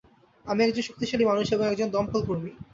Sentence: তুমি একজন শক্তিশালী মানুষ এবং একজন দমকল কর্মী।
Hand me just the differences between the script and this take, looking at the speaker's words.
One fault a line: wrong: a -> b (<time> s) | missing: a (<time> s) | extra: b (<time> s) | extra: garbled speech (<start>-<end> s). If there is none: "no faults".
wrong: তুমি -> আমি (0.5 s)